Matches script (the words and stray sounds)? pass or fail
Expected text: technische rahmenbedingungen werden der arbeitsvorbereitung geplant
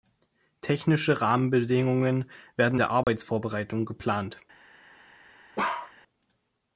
fail